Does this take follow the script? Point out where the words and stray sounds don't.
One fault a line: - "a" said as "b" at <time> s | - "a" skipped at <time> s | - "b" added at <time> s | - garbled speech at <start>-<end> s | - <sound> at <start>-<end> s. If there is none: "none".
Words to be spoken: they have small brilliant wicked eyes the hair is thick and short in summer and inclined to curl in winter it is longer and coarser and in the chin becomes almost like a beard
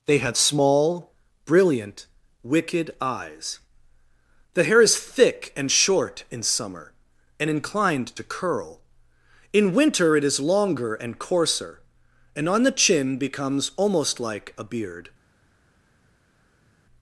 - "in" said as "on" at 12.5 s